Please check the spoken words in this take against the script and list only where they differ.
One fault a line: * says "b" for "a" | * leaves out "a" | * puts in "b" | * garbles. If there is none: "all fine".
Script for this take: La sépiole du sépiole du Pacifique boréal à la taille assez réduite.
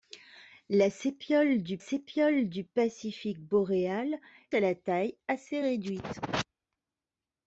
all fine